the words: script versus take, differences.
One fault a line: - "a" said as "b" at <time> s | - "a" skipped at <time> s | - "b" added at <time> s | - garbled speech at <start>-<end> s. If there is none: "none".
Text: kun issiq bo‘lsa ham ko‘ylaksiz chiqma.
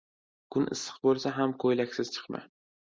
none